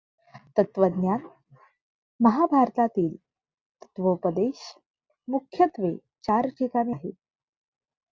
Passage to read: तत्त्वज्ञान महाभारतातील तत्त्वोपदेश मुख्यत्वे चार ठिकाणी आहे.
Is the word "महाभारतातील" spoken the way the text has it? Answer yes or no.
yes